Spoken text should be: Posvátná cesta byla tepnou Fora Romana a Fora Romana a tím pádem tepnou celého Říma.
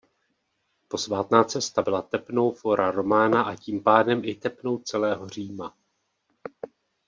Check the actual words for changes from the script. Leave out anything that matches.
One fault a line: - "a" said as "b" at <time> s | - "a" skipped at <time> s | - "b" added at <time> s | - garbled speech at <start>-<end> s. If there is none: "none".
- "Fora Romana a" skipped at 3.5 s
- "i" added at 4.2 s